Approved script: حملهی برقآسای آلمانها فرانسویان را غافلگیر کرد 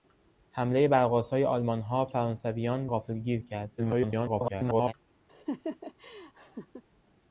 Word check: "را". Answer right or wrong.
wrong